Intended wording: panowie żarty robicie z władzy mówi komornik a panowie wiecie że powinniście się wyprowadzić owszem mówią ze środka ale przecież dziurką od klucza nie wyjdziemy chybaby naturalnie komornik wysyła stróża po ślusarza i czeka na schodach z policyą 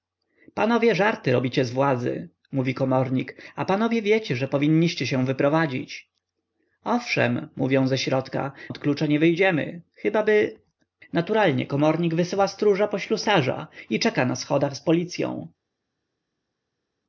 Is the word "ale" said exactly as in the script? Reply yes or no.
no